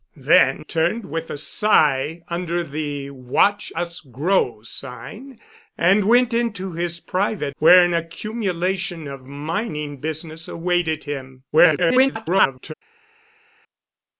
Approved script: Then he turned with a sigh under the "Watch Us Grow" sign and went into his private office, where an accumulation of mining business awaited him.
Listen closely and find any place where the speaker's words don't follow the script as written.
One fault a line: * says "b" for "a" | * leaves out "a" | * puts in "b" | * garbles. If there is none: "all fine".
* leaves out "he"
* leaves out "office"
* garbles